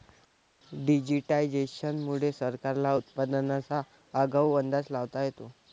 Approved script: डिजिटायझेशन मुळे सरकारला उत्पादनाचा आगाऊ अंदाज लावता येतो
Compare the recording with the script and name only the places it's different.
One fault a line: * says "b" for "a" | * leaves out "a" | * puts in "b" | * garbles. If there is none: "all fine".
all fine